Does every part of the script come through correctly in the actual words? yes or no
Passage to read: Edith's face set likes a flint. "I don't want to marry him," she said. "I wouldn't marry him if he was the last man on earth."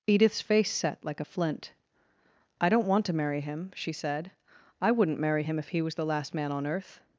no